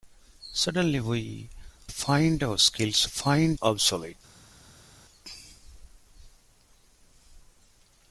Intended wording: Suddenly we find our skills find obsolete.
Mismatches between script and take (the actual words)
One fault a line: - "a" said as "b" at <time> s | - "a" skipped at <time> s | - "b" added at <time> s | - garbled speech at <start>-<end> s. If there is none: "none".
none